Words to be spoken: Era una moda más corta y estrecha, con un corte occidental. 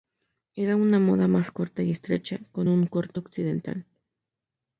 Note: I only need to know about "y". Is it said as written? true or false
true